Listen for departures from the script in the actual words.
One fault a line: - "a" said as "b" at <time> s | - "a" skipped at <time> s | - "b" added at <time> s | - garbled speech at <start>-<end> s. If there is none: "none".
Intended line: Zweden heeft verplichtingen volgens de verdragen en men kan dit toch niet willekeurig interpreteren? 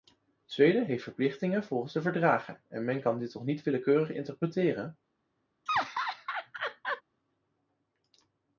none